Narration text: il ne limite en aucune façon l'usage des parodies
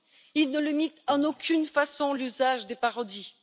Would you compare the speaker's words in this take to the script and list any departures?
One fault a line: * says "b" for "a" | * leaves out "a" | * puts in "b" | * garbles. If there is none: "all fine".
all fine